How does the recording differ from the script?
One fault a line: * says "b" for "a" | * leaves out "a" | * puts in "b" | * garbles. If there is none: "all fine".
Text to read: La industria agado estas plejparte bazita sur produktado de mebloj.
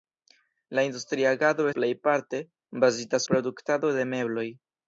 * leaves out "estas"
* leaves out "sur"